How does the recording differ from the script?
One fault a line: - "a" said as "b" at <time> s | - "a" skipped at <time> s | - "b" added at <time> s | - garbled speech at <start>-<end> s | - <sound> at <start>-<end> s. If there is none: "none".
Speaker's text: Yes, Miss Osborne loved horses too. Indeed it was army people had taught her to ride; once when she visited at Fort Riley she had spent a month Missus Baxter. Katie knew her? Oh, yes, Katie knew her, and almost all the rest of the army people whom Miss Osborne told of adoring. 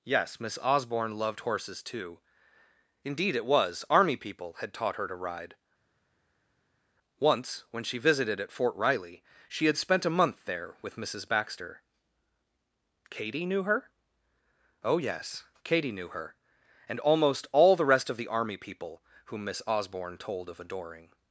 - "there with" added at 10.5 s